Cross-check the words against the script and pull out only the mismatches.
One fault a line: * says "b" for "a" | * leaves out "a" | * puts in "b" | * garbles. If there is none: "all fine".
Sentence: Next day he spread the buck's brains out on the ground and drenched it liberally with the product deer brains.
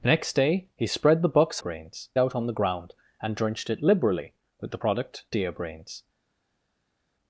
all fine